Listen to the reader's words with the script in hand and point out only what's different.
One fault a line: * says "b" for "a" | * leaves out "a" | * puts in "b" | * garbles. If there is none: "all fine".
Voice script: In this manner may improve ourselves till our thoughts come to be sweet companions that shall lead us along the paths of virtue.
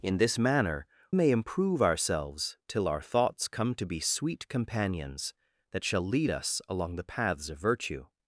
all fine